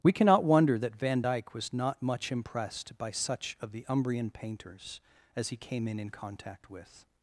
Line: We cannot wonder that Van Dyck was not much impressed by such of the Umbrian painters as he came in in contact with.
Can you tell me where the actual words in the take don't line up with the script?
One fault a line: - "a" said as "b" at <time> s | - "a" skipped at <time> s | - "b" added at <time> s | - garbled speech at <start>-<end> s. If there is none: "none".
none